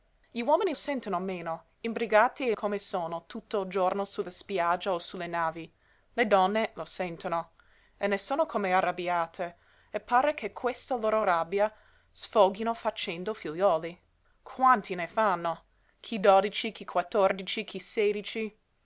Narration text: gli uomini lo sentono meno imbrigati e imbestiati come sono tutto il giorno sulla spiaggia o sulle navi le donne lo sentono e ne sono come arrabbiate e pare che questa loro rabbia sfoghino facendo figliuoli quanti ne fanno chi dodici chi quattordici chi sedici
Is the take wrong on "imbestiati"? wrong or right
wrong